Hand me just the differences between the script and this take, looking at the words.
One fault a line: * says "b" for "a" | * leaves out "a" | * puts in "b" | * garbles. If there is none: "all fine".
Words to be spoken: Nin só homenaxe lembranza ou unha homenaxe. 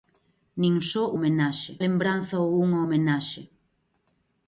all fine